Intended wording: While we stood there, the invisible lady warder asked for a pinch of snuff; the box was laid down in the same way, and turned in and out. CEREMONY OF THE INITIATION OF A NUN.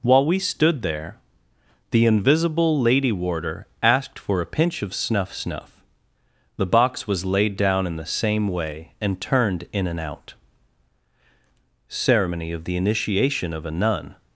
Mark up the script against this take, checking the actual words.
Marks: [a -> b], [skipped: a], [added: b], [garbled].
While we stood there, the invisible lady warder asked for a pinch of snuff; [added: snuff] the box was laid down in the same way, and turned in and out. CEREMONY OF THE INITIATION OF A NUN.